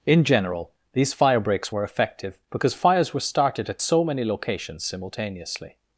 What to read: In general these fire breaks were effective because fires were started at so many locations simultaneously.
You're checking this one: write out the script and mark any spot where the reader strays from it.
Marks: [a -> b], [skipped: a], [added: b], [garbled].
In general these fire breaks were effective because fires were started at so many locations simultaneously.